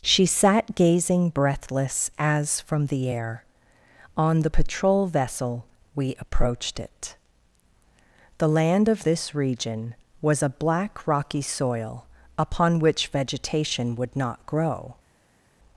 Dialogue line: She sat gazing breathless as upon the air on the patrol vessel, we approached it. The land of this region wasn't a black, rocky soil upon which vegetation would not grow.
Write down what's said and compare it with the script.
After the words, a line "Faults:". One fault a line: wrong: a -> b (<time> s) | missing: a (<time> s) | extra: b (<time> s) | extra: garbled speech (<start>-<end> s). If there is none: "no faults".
She sat gazing breathless as from the air on the patrol vessel, we approached it. The land of this region was a black, rocky soil upon which vegetation would not grow.
Faults:
wrong: upon -> from (2.6 s)
wrong: wasn't -> was (10.2 s)